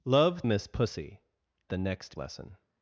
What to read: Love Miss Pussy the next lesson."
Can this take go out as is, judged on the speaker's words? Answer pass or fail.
pass